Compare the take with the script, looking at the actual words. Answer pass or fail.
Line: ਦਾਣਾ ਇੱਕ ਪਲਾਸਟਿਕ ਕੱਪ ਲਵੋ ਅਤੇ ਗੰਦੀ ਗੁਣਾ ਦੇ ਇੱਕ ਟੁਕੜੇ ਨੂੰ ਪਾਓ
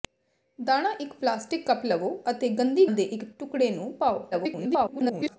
fail